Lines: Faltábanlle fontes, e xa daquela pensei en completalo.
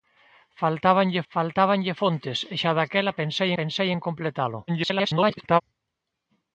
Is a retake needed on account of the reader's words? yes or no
yes